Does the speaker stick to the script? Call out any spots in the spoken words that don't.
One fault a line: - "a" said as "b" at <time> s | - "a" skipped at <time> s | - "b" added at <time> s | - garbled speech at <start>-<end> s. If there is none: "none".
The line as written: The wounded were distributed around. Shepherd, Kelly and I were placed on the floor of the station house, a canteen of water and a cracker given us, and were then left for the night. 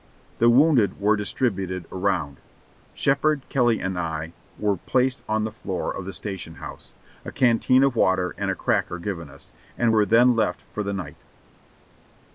none